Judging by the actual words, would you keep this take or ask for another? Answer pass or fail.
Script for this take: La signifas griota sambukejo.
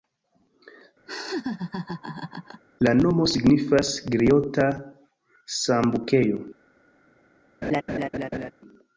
fail